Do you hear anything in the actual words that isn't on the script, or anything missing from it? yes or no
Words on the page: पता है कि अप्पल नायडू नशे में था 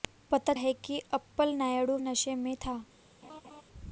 no